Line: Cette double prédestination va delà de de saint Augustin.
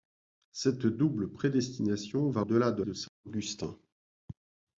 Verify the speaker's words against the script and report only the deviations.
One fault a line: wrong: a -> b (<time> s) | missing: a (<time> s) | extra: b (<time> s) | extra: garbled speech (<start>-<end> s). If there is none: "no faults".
no faults